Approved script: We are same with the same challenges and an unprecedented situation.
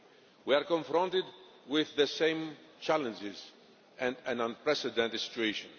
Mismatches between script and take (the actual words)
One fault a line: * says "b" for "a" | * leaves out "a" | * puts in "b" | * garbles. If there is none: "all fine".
* says "confronted" for "same"